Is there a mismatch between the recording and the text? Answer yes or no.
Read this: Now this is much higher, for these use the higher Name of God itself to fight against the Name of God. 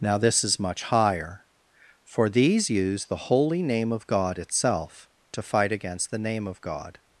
yes